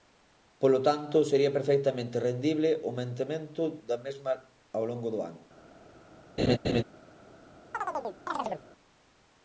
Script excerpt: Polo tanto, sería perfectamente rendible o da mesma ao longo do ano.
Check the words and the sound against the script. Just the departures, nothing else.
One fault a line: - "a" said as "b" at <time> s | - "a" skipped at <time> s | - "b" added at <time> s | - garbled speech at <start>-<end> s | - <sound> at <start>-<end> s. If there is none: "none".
- "mantemento" added at 3.0 s
- laugh at 6.4-6.8 s
- chirp at 7.7-8.6 s